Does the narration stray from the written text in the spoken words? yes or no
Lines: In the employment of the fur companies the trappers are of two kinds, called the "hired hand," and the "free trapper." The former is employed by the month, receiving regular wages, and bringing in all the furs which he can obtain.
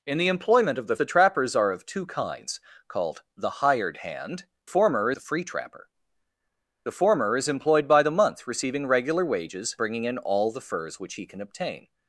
yes